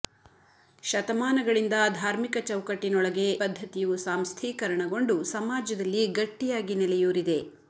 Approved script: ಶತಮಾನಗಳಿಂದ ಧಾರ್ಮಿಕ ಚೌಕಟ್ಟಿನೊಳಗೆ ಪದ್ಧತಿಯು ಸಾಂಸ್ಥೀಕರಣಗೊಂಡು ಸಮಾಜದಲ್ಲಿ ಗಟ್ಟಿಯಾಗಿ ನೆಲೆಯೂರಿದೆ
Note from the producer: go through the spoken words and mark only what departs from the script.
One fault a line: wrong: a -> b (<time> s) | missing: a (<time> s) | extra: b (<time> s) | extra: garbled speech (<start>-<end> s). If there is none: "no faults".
no faults